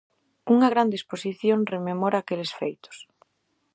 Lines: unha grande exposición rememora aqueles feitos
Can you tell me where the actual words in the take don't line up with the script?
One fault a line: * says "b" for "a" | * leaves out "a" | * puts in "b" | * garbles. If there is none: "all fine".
all fine